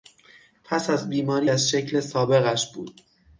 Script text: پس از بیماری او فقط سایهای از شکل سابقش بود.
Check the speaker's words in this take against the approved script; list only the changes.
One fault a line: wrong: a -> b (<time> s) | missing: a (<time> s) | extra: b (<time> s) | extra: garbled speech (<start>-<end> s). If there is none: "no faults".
missing: او فقط سایهای (1.5 s)